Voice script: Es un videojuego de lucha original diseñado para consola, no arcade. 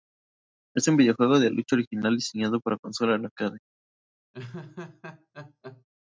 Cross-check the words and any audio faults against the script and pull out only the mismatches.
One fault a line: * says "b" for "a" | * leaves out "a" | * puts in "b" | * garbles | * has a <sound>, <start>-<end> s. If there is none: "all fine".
* has a laugh, 4.3-5.8 s